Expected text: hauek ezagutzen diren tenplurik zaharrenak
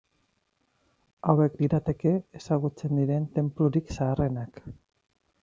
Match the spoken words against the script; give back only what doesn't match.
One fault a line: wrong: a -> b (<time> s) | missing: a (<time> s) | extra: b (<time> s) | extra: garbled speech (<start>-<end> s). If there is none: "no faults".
extra: lirateke (1.6 s)